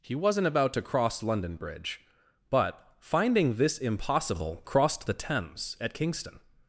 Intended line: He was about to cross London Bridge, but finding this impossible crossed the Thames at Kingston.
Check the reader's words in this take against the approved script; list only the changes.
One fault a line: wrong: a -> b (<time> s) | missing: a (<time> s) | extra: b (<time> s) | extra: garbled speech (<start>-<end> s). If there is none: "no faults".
wrong: was -> wasn't (0.1 s)